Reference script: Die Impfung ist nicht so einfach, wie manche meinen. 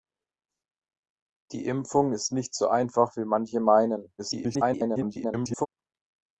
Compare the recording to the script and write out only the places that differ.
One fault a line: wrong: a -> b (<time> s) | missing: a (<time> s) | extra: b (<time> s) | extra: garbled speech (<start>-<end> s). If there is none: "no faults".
extra: garbled speech (4.2-5.7 s)